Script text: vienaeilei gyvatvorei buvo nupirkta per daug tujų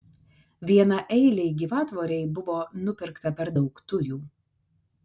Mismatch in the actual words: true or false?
false